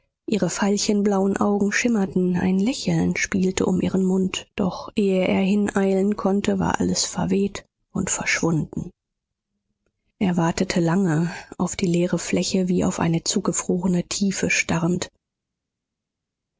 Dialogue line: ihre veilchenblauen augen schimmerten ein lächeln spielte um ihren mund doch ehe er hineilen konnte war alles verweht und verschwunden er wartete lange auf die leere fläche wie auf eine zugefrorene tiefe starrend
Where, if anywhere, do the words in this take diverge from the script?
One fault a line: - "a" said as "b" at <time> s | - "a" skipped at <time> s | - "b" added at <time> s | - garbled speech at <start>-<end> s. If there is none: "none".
none